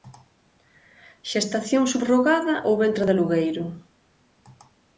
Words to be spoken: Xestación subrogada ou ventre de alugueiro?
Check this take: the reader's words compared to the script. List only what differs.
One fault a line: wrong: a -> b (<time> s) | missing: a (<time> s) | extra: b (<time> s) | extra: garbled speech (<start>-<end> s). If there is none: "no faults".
no faults